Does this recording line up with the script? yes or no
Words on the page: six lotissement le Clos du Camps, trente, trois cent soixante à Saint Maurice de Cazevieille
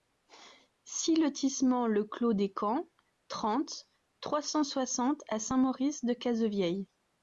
no